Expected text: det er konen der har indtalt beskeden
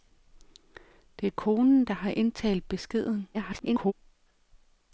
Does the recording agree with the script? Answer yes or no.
no